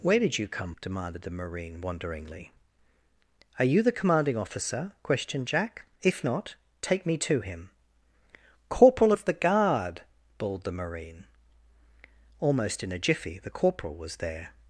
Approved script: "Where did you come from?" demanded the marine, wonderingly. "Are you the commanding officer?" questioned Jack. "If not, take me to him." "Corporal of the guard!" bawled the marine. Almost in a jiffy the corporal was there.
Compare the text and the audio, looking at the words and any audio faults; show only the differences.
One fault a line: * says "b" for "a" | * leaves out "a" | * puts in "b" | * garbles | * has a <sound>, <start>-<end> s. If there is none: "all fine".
* leaves out "from"